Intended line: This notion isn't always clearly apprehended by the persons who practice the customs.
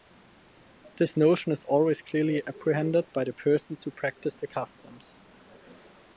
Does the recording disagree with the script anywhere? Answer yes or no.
yes